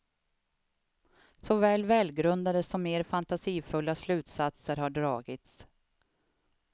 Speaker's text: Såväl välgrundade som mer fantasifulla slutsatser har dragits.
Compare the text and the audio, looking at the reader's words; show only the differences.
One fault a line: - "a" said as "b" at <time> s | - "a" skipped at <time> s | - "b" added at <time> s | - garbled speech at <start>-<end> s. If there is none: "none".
none